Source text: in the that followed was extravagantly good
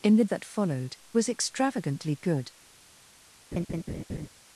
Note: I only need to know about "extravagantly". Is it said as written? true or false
true